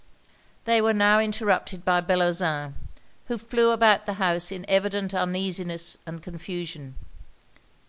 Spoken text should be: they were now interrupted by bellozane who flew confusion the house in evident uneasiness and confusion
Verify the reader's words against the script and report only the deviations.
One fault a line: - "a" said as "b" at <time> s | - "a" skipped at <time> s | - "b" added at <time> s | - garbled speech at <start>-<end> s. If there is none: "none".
- "confusion" said as "about" at 3.7 s